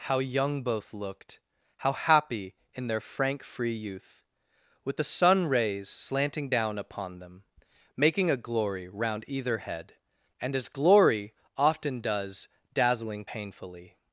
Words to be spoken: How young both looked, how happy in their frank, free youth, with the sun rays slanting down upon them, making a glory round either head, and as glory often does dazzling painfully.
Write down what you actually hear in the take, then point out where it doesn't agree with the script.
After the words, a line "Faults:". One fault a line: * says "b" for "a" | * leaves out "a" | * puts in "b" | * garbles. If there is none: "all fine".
How young both looked, how happy in their frank, free youth, with the sun rays slanting down upon them, making a glory round either head, and as glory often does dazzling painfully.
Faults:
all fine